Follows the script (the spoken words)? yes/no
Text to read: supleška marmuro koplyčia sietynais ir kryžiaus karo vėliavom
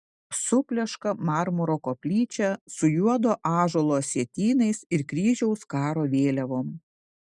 no